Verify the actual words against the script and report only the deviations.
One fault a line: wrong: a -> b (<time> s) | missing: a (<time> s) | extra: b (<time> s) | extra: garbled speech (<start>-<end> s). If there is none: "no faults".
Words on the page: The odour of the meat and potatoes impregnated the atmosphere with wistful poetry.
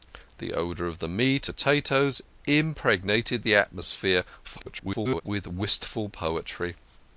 missing: and (1.5 s)
extra: garbled speech (4.4-5.2 s)